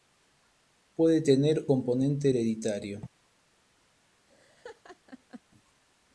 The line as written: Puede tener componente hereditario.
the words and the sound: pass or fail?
fail